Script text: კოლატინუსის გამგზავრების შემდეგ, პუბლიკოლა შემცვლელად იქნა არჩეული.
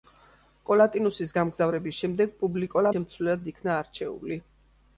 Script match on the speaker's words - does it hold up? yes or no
yes